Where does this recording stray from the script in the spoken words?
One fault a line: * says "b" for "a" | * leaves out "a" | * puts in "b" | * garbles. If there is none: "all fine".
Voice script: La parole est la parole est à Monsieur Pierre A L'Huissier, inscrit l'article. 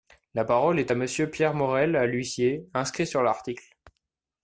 * leaves out "la parole est"
* puts in "Morel"
* puts in "sur"